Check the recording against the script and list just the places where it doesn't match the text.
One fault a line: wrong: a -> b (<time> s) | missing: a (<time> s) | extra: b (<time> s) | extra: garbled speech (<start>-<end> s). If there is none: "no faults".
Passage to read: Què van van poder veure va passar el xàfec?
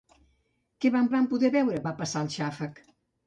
no faults